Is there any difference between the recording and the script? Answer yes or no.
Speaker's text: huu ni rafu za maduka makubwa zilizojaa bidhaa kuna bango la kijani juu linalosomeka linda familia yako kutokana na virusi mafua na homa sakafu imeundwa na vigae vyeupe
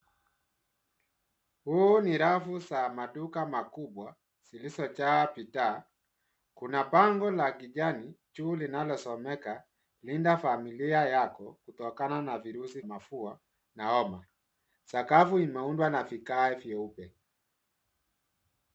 no